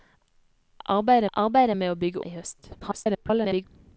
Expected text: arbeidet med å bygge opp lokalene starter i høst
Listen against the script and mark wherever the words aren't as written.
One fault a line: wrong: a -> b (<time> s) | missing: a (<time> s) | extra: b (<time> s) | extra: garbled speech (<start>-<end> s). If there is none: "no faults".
extra: arbeidet (1.3 s)
missing: opp lokalene starter (2.2 s)
extra: garbled speech (2.8-3.7 s)